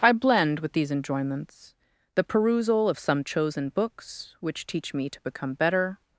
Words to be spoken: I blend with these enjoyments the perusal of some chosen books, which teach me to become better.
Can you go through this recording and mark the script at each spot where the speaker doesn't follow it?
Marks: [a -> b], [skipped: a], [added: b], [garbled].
I blend with these enjoyments the perusal of some chosen books, which teach me to become better.